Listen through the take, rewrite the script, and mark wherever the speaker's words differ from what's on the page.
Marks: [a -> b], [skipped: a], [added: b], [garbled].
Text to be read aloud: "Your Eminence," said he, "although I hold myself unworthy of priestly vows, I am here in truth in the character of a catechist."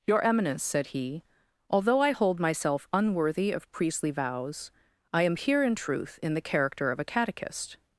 "Your Eminence," said he, "although I hold myself unworthy of priestly vows, I am here in truth in the character of a catechist."